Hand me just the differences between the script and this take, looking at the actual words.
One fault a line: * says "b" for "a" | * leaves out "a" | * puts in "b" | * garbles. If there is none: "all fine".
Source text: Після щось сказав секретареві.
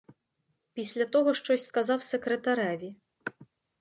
* puts in "того"